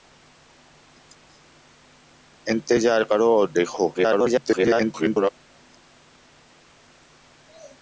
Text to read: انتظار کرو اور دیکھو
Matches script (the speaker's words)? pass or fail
fail